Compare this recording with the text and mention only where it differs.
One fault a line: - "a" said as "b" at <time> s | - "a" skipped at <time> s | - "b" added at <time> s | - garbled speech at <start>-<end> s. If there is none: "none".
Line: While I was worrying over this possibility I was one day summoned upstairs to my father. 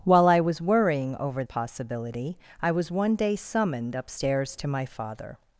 - "this" skipped at 1.4 s